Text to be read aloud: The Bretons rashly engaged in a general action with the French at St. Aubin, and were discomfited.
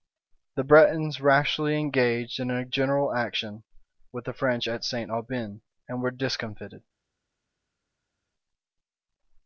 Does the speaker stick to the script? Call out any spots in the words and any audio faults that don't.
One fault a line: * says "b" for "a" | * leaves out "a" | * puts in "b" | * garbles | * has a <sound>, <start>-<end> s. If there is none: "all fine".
all fine